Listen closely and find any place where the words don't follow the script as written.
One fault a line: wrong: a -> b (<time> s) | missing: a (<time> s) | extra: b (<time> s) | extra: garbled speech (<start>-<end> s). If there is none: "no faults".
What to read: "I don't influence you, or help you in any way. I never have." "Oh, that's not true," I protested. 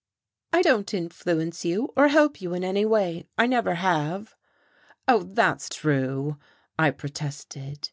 missing: not (5.7 s)